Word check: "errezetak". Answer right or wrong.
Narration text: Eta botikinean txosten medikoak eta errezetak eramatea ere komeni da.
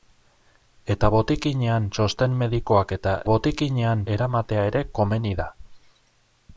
wrong